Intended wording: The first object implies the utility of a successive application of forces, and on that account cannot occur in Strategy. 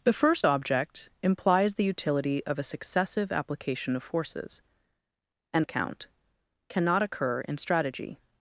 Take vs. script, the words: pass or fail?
fail